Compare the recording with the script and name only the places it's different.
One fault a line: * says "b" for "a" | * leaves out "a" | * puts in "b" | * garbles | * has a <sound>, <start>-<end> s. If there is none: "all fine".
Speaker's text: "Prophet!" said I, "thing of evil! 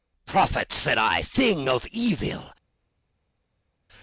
all fine